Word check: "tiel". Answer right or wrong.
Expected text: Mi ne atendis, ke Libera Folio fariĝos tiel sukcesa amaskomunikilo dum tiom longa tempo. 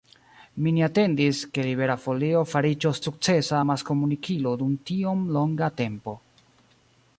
wrong